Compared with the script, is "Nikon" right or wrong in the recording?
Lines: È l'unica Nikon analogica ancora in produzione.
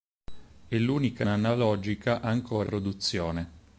wrong